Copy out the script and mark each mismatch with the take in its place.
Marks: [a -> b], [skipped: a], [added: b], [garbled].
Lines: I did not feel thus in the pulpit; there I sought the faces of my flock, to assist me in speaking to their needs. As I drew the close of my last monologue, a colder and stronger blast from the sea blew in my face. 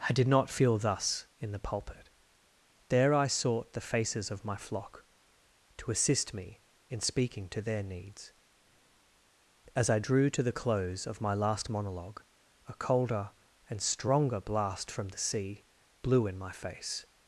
I did not feel thus in the pulpit; there I sought the faces of my flock, to assist me in speaking to their needs. As I drew [added: to] the close of my last monologue, a colder and stronger blast from the sea blew in my face.